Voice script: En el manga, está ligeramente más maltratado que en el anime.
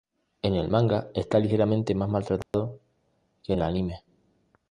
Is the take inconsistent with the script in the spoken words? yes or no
yes